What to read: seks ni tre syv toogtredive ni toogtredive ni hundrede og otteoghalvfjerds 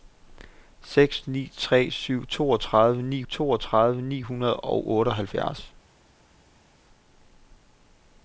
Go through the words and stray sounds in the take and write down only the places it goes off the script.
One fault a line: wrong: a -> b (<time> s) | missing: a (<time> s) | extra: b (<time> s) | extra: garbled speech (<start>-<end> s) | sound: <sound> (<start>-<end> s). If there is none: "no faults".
no faults